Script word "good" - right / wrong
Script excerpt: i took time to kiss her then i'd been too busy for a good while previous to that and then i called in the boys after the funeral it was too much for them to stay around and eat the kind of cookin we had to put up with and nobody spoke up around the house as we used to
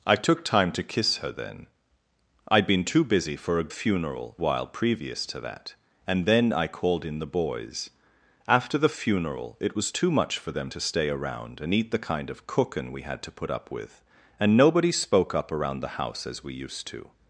wrong